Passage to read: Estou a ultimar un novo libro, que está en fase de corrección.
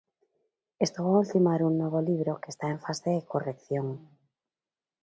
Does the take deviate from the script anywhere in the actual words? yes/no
no